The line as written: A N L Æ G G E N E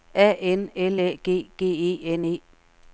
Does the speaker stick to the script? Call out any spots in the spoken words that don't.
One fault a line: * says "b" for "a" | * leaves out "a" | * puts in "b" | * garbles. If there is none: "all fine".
all fine